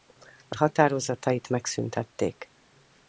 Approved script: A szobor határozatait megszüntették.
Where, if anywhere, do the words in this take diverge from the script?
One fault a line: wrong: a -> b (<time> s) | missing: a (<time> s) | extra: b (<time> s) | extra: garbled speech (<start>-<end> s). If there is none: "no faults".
missing: szobor (0.6 s)